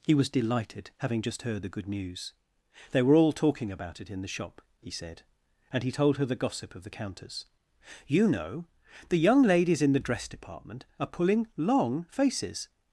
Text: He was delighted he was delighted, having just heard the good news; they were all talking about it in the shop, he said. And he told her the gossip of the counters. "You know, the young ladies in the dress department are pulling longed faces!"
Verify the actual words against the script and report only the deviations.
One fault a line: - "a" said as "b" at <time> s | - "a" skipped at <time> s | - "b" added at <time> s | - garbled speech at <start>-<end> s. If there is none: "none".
- "he was delighted" skipped at 0.9 s
- "longed" said as "long" at 11.6 s